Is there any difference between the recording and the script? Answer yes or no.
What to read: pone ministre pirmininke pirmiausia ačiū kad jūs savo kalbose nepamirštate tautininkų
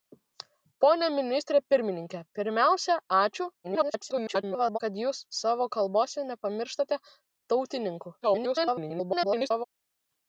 yes